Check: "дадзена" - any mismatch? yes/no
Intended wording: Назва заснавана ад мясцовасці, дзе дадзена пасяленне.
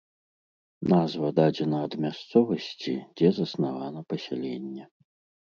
yes